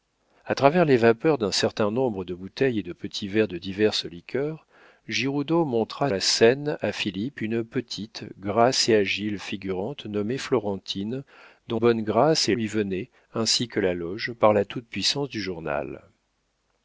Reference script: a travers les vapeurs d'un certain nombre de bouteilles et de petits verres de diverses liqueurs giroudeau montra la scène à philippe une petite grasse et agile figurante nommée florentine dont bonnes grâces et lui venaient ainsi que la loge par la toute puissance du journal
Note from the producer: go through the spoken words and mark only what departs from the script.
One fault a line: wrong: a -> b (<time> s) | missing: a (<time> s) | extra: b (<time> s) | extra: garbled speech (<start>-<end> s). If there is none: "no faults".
no faults